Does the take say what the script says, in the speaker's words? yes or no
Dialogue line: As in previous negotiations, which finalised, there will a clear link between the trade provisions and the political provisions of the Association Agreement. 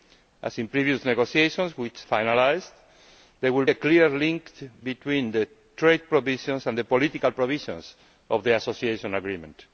yes